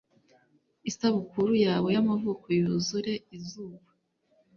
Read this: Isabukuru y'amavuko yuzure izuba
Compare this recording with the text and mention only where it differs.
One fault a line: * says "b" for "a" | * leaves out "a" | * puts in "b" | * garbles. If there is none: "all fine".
* puts in "yawe"